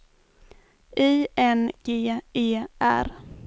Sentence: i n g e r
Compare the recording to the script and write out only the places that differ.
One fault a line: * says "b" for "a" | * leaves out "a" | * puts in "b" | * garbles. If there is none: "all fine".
all fine